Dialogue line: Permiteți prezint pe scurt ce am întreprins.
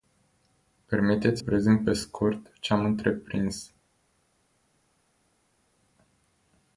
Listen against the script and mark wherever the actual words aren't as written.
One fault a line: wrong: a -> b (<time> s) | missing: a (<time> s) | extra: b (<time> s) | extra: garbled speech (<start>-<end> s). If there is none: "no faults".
no faults